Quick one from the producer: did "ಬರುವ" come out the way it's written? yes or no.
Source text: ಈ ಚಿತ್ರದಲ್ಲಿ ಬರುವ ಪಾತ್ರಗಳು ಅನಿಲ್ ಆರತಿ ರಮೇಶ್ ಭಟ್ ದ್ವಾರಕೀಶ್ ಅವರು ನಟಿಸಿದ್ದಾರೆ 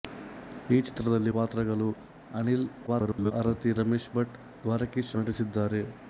no